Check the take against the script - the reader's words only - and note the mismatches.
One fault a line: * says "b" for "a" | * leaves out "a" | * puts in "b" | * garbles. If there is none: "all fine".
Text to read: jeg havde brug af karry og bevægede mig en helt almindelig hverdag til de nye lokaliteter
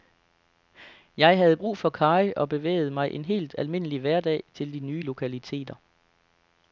* says "for" for "af"